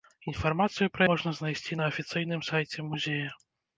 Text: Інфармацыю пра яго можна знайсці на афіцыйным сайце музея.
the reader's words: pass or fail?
fail